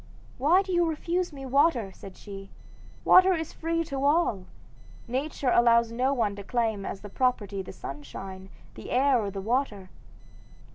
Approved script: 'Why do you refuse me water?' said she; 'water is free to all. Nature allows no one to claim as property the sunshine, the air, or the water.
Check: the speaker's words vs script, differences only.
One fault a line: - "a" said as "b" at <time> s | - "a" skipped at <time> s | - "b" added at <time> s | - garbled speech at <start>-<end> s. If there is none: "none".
none